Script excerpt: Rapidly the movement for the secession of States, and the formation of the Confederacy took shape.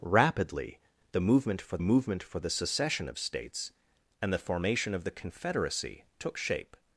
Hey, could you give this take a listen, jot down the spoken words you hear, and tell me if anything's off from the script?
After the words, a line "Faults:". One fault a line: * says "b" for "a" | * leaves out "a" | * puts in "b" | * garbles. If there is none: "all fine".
Rapidly the movement for movement for the secession of States, and the formation of the Confederacy took shape.
Faults:
* puts in "movement for"